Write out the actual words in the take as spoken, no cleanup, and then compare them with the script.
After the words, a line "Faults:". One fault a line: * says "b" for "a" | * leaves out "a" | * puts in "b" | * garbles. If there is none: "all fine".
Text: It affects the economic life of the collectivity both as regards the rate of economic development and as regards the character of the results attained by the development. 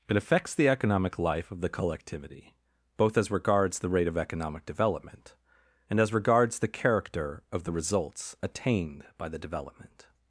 It affects the economic life of the collectivity both as regards the rate of economic development and as regards the character of the results attained by the development.
Faults:
all fine